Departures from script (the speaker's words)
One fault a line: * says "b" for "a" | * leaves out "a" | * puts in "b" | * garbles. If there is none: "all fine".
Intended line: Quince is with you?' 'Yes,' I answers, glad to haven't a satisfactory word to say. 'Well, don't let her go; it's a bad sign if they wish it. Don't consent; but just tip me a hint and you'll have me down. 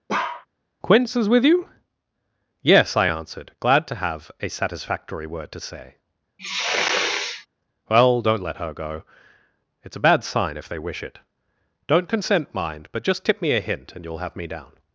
* says "answered" for "answers"
* says "have" for "haven't"
* puts in "mind"